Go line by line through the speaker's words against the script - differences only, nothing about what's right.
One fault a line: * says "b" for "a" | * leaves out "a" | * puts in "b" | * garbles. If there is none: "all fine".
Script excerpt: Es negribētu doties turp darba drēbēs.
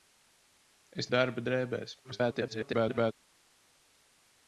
* leaves out "negribētu doties turp"
* garbles